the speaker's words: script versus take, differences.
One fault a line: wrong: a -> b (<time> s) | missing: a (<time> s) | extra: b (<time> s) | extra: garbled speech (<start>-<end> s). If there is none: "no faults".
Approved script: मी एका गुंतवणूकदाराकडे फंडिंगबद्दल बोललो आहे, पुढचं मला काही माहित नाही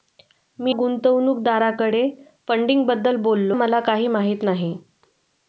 missing: एका (0.8 s)
missing: आहे पुढचं (3.6 s)